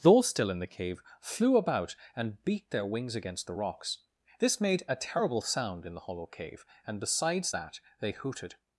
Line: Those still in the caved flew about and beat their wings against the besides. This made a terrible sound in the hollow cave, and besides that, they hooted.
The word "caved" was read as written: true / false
false